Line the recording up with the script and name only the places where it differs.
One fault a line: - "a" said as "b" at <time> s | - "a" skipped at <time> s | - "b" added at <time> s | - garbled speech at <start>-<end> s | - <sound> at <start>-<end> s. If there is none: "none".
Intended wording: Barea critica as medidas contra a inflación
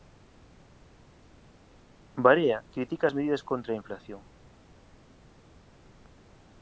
none